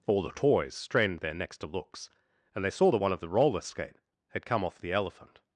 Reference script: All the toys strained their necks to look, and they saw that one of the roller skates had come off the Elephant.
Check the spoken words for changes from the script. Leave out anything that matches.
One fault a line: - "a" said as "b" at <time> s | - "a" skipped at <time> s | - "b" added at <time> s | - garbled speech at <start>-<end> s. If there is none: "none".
- "look" said as "looks" at 1.7 s
- "skates" said as "skate" at 3.6 s